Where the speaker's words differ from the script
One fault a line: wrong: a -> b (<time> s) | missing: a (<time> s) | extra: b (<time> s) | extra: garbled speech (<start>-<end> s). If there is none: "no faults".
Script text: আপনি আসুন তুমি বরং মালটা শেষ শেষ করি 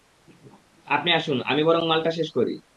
wrong: তুমি -> আমি (1.4 s)
missing: শেষ (2.3 s)